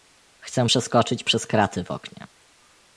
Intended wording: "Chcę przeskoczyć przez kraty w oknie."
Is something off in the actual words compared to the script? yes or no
no